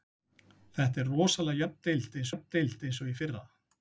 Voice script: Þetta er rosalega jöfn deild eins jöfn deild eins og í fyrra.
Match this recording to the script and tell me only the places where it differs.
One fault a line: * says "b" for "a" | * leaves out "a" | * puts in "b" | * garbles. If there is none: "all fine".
all fine